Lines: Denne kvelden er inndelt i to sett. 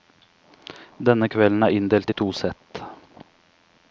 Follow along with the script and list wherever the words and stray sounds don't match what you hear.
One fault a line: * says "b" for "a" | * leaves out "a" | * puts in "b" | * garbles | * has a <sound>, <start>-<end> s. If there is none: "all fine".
all fine